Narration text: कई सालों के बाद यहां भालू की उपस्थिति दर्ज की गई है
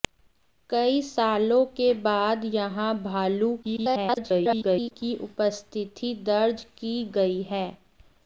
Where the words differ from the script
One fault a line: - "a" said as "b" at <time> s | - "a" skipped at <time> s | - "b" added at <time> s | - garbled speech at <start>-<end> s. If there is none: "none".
- garbled speech at 3.6-4.9 s